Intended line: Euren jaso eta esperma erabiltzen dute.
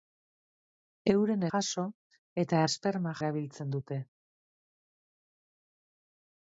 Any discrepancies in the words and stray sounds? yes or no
no